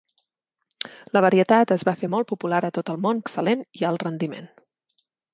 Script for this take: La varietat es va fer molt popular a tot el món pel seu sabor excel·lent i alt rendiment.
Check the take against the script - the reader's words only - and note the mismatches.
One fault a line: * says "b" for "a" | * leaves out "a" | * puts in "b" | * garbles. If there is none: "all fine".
* leaves out "pel seu sabor"